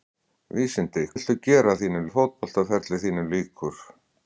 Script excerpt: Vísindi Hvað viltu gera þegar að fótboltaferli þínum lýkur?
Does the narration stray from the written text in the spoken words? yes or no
yes